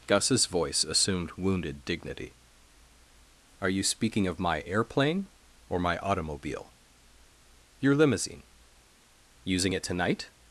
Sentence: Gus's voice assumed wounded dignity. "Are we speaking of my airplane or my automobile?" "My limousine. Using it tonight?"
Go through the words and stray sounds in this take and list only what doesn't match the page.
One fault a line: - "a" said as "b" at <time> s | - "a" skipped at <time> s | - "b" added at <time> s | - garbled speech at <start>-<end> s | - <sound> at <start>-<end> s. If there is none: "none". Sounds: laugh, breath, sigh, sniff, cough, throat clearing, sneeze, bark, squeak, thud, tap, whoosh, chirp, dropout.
- "we" said as "you" at 3.7 s
- "My" said as "Your" at 7.8 s